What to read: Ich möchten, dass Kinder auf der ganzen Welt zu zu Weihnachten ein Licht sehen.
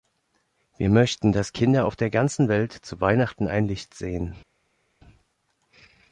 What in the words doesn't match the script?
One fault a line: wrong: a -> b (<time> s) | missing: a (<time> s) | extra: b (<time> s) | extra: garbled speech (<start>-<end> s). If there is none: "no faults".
wrong: Ich -> Wir (0.8 s)
missing: zu (3.0 s)